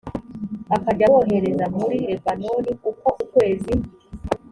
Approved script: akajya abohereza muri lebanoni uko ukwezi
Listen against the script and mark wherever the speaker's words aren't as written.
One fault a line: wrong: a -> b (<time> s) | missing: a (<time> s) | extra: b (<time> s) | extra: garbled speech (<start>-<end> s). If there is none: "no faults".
no faults